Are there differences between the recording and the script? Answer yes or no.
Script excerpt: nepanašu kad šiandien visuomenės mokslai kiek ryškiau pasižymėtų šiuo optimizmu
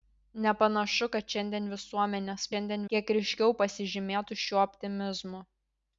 yes